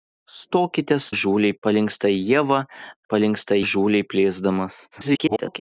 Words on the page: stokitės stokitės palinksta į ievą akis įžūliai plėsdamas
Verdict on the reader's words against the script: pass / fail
fail